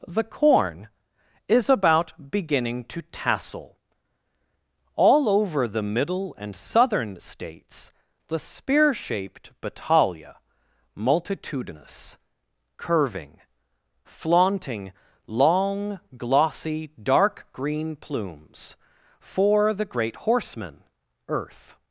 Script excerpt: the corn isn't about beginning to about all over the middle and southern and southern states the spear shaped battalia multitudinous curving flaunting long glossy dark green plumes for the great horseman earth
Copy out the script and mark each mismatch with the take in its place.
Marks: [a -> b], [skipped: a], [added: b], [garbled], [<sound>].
the corn [isn't -> is] about beginning to [about -> tassel] all over the middle and southern [skipped: and southern] states the spear shaped battalia multitudinous curving flaunting long glossy dark green plumes for the great horseman earth